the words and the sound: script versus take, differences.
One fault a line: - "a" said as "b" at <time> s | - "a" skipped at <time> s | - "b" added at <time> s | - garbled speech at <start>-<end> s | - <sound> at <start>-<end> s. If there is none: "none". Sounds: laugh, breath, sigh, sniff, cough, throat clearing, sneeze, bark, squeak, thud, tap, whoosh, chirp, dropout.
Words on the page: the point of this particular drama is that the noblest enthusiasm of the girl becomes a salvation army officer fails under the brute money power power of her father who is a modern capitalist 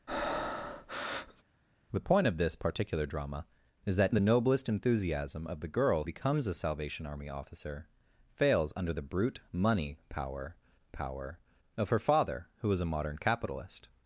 - breath at 0.1-1.4 s